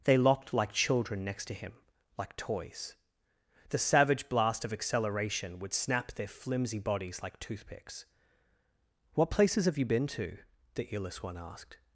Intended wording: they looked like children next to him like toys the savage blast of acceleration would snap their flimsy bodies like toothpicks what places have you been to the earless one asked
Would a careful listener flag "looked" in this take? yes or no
yes